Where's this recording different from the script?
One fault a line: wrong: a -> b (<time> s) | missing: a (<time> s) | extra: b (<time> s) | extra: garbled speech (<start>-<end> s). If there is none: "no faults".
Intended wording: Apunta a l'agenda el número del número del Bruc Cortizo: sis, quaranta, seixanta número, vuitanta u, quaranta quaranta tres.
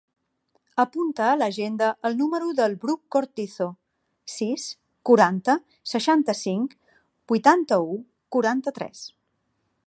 missing: número del (2.7 s)
wrong: número -> cinc (6.4 s)
missing: quaranta (8.8 s)